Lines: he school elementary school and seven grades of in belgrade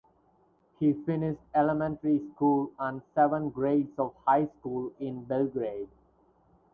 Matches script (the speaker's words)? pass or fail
fail